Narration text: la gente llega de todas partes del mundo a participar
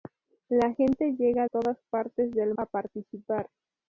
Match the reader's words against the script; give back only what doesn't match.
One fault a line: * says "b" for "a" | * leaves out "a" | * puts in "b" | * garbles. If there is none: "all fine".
* leaves out "de"
* leaves out "mundo"